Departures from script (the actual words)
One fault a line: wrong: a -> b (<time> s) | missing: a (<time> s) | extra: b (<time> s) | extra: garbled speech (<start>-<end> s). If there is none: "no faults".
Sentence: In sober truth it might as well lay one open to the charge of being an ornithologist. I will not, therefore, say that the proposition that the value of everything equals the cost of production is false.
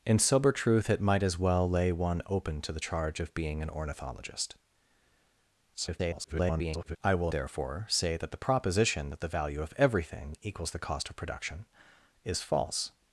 extra: garbled speech (5.7-7.0 s)
missing: not (7.3 s)